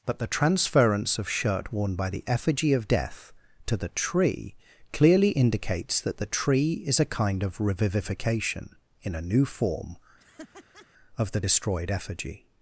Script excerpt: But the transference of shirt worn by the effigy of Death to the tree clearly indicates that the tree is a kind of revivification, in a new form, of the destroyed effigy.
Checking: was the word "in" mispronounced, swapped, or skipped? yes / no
no